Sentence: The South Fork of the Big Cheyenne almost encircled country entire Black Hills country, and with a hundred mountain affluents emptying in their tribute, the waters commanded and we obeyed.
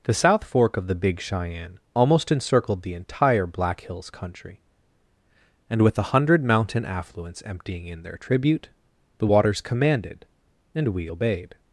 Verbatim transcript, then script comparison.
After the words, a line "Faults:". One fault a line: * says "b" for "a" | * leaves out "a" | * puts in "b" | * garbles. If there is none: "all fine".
The South Fork of the Big Cheyenne almost encircled the entire Black Hills country, and with a hundred mountain affluents emptying in their tribute, the waters commanded and we obeyed.
Faults:
* says "the" for "country"